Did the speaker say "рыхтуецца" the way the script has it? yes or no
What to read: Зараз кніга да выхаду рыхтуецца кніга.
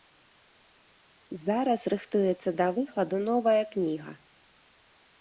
no